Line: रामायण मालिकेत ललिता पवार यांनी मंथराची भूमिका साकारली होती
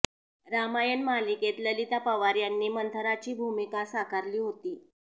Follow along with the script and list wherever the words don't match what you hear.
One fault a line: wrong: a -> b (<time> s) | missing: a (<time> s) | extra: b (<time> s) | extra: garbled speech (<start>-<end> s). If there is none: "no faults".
no faults